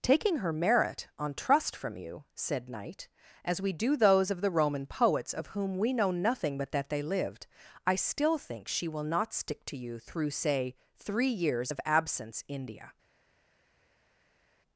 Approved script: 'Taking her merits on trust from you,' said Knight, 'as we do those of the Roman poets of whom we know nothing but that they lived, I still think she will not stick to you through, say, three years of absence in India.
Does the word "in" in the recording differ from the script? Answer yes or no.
yes